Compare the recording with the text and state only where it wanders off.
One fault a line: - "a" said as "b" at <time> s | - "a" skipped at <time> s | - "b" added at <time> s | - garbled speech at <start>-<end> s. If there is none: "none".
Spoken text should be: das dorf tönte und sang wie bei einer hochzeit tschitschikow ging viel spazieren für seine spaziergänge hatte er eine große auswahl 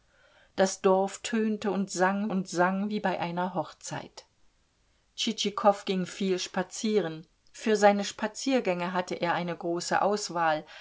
- "und sang" added at 2.3 s